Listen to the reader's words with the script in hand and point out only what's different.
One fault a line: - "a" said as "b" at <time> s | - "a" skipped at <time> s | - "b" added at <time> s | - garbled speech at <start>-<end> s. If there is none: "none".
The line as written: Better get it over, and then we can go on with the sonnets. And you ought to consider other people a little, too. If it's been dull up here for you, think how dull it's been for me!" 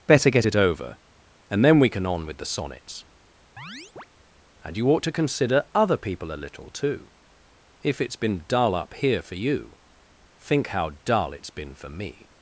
- "go" skipped at 2.1 s